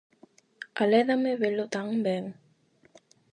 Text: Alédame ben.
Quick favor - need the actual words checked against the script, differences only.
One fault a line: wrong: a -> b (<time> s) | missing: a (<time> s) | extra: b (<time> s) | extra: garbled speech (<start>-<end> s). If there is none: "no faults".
extra: velo tan (1.4 s)